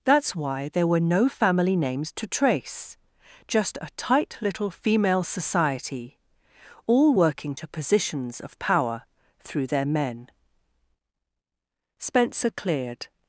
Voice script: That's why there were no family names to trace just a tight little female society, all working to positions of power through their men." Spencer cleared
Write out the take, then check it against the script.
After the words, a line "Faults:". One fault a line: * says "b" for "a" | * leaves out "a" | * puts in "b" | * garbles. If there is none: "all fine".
That's why there were no family names to trace just a tight little female society, all working to positions of power through their men." Spencer cleared
Faults:
all fine